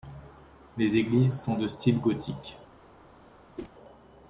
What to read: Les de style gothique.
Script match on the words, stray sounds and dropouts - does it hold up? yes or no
no